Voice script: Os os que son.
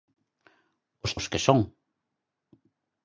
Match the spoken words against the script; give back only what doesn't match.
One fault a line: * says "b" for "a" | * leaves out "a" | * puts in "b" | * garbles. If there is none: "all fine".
all fine